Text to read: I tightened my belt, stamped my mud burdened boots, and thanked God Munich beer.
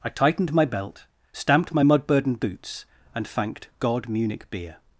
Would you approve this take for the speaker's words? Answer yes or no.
yes